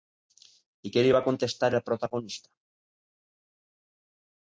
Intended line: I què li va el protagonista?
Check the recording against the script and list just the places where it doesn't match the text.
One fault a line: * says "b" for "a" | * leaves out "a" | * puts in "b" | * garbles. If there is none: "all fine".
* puts in "contestar"